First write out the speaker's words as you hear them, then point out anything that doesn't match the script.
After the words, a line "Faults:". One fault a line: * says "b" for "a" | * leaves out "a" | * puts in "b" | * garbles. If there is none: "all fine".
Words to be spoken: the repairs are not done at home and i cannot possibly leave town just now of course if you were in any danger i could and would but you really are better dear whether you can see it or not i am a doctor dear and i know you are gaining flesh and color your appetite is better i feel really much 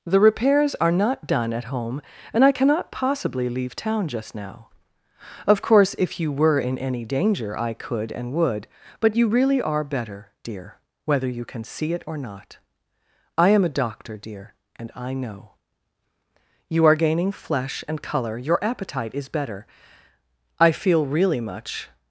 the repairs are not done at home and i cannot possibly leave town just now of course if you were in any danger i could and would but you really are better dear whether you can see it or not i am a doctor dear and i know you are gaining flesh and color your appetite is better i feel really much
Faults:
all fine